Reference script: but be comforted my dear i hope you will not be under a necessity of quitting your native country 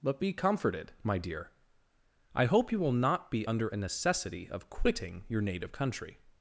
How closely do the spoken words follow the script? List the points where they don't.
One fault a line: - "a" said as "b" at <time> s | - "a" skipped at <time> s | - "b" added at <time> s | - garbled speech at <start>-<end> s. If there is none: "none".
none